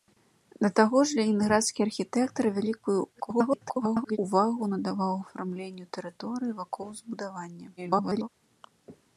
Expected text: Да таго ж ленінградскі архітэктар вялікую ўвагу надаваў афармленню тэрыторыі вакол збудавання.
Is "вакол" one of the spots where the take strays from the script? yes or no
no